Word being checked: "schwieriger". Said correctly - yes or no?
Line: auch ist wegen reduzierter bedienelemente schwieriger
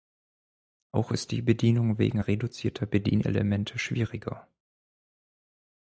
yes